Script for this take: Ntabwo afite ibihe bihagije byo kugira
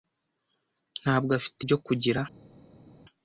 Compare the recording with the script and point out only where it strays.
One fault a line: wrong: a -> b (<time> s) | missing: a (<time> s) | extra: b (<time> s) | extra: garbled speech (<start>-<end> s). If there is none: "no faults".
missing: ibihe bihagije (1.6 s)